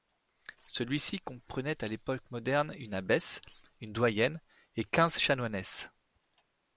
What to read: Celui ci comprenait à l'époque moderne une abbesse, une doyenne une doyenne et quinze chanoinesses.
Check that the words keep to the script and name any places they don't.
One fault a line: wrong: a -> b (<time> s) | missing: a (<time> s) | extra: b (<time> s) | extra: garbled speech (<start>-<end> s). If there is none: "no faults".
missing: une doyenne (4.4 s)